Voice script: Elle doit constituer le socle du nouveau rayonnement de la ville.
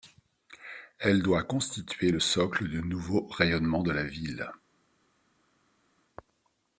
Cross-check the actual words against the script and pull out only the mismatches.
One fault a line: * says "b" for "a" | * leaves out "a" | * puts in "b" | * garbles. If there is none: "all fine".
all fine